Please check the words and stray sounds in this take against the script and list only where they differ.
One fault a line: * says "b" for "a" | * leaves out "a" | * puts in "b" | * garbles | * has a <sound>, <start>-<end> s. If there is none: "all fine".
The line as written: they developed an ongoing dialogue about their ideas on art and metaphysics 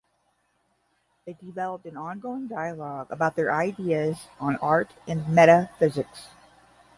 all fine